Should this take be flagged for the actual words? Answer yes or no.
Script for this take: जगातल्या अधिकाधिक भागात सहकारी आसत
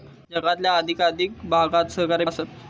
no